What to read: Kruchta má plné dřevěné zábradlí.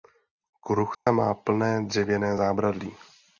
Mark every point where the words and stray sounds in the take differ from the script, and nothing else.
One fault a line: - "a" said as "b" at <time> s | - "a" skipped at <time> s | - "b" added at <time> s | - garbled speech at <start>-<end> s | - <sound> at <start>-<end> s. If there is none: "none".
- dropout at 0.9-1.1 s